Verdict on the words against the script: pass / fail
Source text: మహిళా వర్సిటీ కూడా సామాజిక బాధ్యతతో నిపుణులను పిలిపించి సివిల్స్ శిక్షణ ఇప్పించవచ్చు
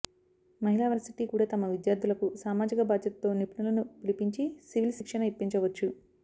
fail